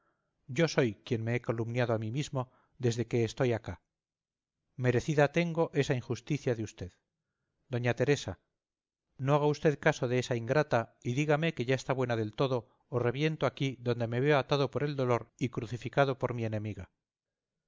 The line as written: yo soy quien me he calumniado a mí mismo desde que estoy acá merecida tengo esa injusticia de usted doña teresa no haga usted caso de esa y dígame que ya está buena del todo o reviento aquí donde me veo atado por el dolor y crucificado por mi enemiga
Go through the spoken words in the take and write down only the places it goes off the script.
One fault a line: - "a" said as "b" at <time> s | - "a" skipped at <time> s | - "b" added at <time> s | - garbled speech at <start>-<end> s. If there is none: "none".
- "ingrata" added at 10.3 s